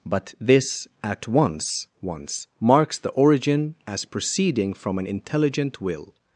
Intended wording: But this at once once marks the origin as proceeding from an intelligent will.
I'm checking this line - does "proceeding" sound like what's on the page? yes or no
yes